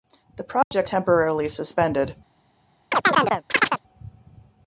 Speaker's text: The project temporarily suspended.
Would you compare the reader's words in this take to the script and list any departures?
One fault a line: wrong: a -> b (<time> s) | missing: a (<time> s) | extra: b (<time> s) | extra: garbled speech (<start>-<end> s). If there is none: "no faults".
no faults